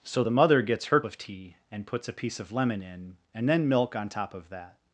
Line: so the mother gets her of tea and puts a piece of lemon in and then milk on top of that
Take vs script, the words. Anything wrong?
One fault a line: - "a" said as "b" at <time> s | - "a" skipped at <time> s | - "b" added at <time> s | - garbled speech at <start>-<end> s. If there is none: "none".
none